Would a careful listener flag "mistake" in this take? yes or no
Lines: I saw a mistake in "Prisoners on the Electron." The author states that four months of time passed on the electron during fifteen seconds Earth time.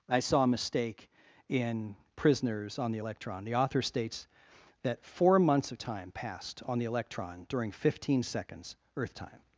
no